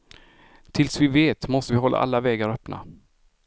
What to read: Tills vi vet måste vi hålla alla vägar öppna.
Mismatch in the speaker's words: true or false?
false